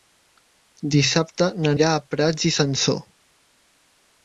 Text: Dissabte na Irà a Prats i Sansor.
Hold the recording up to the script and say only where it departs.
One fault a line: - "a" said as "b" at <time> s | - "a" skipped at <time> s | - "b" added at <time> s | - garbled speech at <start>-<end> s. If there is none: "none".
none